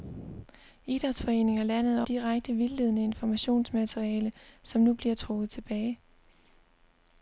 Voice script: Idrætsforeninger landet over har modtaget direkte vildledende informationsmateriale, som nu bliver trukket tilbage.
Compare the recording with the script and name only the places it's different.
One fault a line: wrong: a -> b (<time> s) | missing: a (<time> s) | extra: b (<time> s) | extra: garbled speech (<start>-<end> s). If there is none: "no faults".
missing: over har modtaget (2.0 s)